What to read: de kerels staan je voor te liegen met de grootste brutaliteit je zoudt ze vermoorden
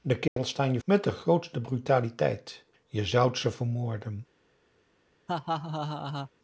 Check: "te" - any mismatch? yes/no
yes